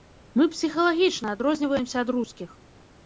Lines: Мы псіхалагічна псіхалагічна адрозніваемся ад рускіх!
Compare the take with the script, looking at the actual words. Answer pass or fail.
fail